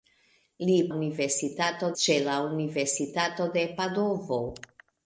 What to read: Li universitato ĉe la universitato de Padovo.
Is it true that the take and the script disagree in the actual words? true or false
false